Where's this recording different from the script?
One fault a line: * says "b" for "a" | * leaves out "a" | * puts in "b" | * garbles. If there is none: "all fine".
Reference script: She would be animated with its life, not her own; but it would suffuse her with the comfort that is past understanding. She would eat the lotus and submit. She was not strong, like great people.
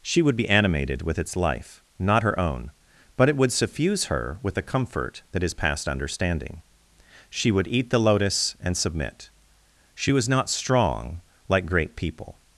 all fine